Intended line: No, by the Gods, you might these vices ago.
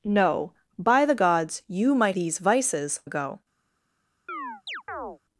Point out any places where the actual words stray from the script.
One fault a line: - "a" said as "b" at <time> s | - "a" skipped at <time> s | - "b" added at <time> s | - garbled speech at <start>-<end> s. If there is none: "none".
none